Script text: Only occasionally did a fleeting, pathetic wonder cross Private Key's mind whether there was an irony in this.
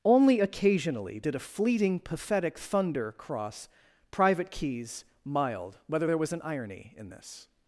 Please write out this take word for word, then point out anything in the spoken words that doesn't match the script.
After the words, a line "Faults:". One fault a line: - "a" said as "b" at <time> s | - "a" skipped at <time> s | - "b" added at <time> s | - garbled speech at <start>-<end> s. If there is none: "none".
Only occasionally did a fleeting, pathetic thunder cross Private Key's mild whether there was an irony in this.
Faults:
- "wonder" said as "thunder" at 2.6 s
- "mind" said as "mild" at 5.2 s